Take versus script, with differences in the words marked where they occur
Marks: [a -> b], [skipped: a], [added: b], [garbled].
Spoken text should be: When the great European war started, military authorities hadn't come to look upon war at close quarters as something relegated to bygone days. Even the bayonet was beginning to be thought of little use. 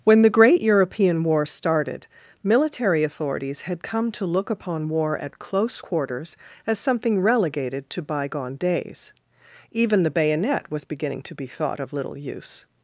When the great European war started, military authorities [hadn't -> had] come to look upon war at close quarters as something relegated to bygone days. Even the bayonet was beginning to be thought of little use.